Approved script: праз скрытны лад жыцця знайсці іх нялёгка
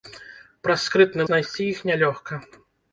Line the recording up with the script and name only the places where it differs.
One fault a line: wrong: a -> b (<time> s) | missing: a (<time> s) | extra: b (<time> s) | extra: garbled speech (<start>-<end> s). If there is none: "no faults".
missing: лад жыцця (1.3 s)